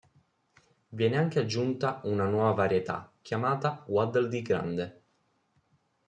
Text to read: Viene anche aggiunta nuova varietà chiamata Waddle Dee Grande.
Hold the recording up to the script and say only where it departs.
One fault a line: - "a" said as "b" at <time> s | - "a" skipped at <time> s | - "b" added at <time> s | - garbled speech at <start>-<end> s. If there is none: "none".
- "una" added at 2.0 s